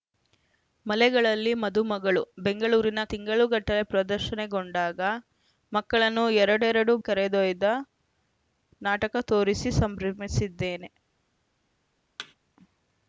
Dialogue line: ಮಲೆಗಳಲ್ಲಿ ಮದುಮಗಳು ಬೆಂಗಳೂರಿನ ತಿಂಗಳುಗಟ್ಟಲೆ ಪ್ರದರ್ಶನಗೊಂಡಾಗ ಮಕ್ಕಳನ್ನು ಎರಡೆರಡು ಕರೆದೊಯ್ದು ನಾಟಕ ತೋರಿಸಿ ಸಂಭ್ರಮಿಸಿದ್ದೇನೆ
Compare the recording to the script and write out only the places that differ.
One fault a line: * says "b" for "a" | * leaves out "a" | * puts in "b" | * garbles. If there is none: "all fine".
all fine